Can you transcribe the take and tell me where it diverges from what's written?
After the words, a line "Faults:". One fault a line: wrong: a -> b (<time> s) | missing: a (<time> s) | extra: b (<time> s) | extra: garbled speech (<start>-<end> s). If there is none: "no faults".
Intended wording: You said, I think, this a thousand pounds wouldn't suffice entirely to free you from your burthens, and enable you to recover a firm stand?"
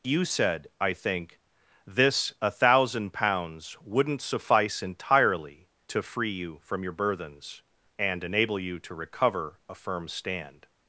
You said, I think, this a thousand pounds wouldn't suffice entirely to free you from your burthens, and enable you to recover a firm stand?"
Faults:
no faults